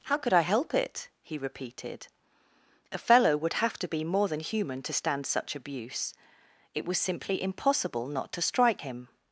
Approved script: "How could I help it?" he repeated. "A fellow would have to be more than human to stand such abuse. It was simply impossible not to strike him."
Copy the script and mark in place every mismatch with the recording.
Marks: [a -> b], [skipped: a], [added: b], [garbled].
"How could I help it?" he repeated. "A fellow would have to be more than human to stand such abuse. It was simply impossible not to strike him."